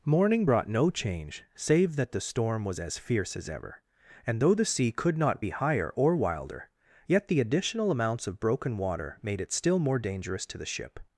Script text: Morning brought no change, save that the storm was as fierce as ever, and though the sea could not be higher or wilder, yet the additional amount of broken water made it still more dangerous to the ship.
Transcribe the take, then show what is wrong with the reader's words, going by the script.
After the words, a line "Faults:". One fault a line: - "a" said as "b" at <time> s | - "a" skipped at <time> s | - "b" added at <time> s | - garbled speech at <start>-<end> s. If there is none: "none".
Morning brought no change, save that the storm was as fierce as ever, and though the sea could not be higher or wilder, yet the additional amounts of broken water made it still more dangerous to the ship.
Faults:
- "amount" said as "amounts" at 7.9 s